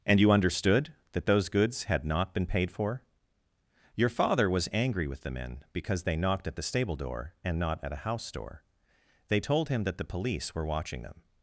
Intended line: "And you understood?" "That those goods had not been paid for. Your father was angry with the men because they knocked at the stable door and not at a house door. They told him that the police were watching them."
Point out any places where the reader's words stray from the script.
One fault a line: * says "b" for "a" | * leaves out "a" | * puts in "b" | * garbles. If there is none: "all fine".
all fine